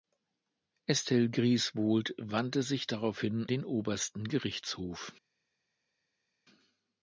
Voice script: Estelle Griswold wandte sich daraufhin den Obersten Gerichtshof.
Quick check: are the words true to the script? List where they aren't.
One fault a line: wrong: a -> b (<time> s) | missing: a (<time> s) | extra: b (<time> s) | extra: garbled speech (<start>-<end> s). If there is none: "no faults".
no faults